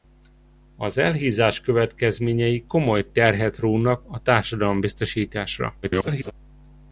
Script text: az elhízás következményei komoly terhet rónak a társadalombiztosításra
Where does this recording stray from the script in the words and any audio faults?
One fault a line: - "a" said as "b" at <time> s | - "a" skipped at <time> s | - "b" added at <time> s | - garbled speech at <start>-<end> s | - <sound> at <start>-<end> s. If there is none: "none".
- garbled speech at 5.8-6.3 s